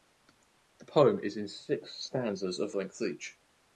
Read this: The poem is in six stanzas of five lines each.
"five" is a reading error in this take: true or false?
true